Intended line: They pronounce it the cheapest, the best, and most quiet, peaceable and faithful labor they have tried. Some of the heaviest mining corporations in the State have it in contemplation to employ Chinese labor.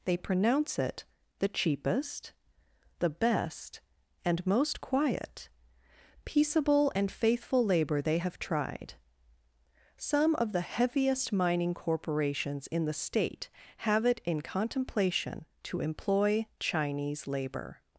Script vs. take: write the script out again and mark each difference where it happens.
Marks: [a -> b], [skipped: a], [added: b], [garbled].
They pronounce it the cheapest, the best, and most quiet, peaceable and faithful labor they have tried. Some of the heaviest mining corporations in the State have it in contemplation to employ Chinese labor.